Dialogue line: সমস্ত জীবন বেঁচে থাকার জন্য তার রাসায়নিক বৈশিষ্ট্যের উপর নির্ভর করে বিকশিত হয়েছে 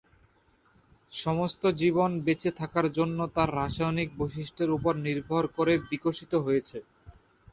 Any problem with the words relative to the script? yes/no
no